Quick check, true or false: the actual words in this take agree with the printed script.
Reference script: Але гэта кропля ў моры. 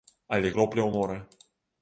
false